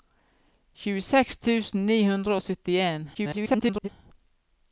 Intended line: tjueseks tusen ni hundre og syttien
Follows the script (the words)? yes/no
no